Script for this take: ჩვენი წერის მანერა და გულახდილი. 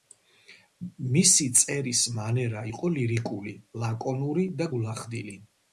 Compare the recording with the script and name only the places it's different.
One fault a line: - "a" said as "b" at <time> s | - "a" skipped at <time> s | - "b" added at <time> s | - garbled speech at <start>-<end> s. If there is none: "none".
- "ჩვენი" said as "მისი" at 1.1 s
- "იყო ლირიკული ლაკონური" added at 2.7 s